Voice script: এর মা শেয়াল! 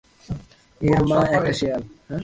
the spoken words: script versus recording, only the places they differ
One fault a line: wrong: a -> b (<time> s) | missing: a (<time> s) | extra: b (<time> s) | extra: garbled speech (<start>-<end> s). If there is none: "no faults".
extra: একটা (1.4 s)